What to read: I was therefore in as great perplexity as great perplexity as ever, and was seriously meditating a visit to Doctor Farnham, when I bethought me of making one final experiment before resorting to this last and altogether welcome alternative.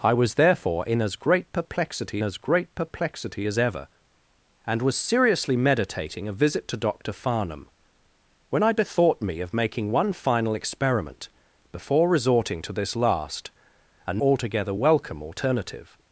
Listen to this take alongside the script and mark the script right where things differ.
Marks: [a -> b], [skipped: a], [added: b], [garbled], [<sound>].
I was therefore in as great perplexity as great perplexity as ever, and was seriously meditating a visit to Doctor Farnham, when I bethought me of making one final experiment before resorting to this last and altogether welcome alternative.